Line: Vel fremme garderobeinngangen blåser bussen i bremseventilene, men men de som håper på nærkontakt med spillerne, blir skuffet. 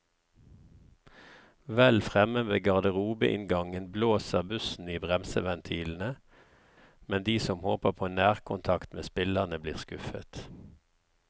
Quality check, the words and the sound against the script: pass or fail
fail